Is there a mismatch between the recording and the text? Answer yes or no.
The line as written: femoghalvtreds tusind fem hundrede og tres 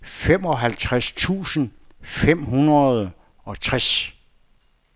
no